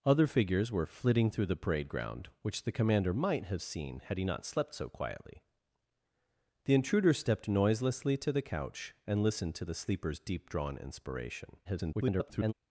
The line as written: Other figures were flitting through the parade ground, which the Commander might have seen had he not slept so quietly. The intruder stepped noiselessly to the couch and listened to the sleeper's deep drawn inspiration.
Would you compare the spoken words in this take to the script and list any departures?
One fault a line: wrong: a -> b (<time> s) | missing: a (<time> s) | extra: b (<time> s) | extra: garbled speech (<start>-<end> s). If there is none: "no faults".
extra: garbled speech (11.6-12.5 s)